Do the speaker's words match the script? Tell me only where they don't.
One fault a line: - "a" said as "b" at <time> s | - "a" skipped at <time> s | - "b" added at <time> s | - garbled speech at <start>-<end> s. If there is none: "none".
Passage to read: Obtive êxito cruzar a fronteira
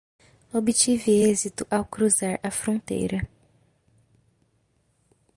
- "ao" added at 1.7 s